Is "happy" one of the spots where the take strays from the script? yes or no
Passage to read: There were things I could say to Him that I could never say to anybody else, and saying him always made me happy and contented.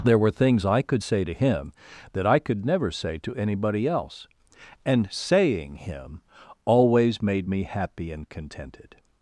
no